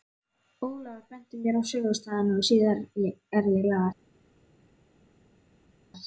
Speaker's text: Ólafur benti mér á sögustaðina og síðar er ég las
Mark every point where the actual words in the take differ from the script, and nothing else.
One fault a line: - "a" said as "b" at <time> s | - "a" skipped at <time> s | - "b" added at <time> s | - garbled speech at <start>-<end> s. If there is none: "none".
none